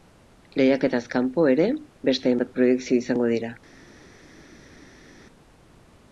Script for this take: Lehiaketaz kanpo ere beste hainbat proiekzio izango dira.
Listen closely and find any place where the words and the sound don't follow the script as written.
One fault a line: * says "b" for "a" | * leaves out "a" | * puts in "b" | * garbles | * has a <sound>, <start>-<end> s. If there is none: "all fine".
all fine